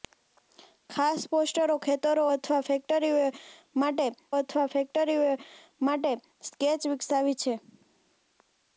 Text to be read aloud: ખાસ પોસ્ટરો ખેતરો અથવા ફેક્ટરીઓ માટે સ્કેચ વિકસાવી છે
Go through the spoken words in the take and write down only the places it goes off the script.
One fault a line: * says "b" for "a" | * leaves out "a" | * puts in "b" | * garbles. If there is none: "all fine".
* puts in "અથવા ફેક્ટરીઓ માટે"